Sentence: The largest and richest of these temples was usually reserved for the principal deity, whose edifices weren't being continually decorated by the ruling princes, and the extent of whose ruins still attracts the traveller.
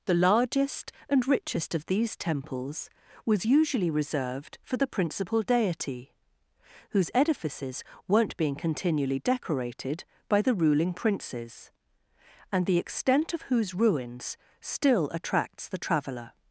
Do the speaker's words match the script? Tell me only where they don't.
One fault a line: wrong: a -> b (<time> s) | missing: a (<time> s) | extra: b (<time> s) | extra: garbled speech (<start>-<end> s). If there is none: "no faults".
no faults